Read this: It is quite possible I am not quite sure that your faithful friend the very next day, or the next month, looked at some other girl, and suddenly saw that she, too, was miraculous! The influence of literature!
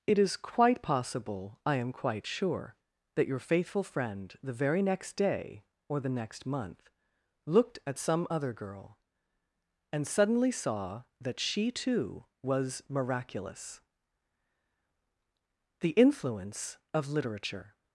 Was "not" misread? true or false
true